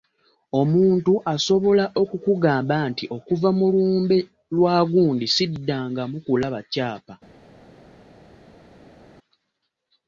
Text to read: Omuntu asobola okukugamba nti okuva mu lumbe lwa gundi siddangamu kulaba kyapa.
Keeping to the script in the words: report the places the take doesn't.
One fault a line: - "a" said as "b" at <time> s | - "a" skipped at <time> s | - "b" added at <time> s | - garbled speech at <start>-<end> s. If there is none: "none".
none